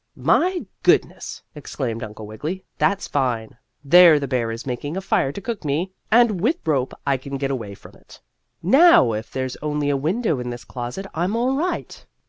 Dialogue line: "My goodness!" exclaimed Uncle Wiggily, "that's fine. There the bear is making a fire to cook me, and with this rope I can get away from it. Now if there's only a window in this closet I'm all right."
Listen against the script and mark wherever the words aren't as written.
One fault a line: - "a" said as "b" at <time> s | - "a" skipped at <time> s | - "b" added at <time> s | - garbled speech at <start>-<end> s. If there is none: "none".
- "this" skipped at 6.6 s